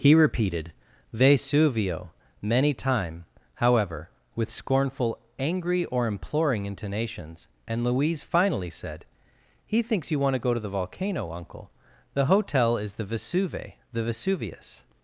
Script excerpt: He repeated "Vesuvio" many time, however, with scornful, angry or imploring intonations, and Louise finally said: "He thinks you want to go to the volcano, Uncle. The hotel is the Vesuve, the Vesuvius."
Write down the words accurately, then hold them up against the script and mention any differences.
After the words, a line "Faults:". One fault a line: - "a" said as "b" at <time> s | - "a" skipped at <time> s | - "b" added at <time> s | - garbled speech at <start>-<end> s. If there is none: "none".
He repeated "Vesuvio" many time, however, with scornful, angry or imploring intonations, and Louise finally said: "He thinks you want to go to the volcano, Uncle. The hotel is the Vesuve, the Vesuvius."
Faults:
none